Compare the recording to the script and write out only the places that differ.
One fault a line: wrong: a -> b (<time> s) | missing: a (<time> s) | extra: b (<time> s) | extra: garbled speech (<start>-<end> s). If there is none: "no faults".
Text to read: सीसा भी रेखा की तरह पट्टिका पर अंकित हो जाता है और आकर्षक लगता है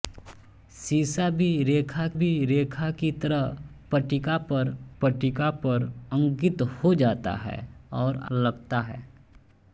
extra: भी रेखा (2.1 s)
extra: पट्टिका पर (5.0 s)
missing: आकर्षक (8.2 s)